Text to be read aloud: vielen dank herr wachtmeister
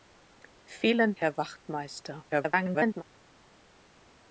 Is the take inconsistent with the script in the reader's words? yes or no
yes